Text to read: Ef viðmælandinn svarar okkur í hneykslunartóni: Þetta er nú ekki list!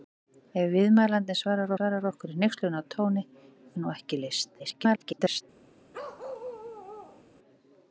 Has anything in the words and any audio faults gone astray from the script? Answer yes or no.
yes